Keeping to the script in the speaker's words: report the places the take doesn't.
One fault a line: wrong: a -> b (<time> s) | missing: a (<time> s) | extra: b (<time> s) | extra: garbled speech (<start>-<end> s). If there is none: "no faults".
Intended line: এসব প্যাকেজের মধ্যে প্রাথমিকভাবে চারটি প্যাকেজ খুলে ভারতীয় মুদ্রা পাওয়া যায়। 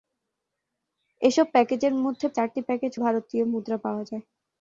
missing: প্রাথমিকভাবে (2.3 s)
missing: খুলে (2.9 s)